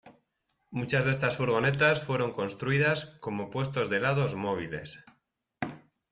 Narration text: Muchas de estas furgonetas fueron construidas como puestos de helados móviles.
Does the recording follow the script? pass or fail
pass